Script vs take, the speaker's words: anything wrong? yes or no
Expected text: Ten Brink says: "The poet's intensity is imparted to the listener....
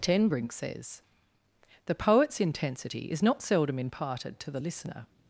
yes